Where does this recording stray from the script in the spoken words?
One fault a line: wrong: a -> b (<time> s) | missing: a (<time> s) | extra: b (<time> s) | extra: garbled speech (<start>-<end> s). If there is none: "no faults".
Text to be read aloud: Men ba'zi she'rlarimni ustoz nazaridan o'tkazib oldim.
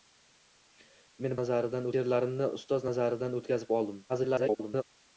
wrong: ba'zi -> nazaridan (1.4 s)
extra: garbled speech (4.1-4.8 s)